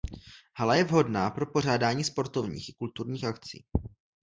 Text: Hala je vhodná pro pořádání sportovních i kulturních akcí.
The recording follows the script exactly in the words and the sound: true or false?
true